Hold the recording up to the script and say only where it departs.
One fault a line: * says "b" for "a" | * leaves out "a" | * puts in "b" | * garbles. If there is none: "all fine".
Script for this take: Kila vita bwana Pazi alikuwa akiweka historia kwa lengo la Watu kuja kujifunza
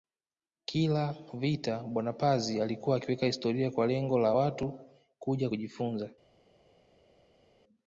all fine